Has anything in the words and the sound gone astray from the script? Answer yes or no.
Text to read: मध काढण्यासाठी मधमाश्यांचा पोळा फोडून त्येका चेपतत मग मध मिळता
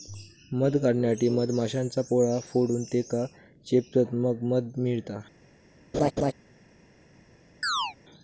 yes